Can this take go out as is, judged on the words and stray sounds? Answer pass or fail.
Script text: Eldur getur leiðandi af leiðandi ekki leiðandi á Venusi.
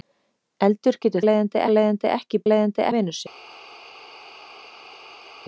pass